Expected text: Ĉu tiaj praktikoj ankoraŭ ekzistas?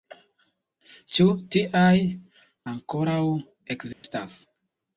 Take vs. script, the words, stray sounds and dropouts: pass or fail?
fail